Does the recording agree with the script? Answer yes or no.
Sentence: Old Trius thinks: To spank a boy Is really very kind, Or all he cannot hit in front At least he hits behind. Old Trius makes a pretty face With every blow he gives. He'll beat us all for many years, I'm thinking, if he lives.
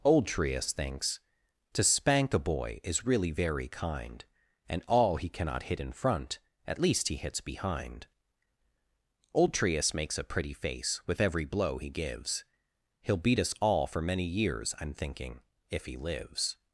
no